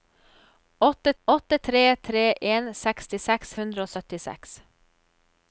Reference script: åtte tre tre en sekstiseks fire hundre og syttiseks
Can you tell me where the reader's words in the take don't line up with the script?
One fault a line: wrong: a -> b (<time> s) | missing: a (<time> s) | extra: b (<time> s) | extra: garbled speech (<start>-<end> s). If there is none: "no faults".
extra: åtte (1.2 s)
missing: fire (3.5 s)